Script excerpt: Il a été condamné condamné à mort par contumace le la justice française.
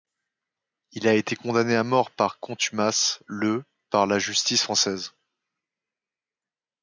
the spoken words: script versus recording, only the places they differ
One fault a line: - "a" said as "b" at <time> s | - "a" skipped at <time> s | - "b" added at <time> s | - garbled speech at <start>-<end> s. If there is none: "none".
- "condamné" skipped at 1.8 s
- "par" added at 3.9 s